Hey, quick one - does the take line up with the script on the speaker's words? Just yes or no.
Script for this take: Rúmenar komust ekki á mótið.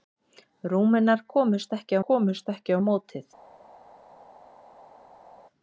no